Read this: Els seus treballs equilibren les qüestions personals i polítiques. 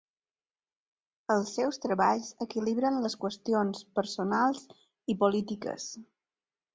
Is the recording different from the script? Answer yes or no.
no